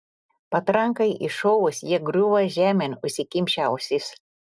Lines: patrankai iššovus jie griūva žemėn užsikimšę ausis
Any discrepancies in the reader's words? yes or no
no